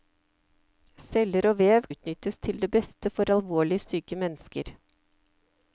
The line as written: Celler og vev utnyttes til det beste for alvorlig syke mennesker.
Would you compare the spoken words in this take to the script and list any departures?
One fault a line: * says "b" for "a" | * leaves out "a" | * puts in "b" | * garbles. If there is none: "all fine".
all fine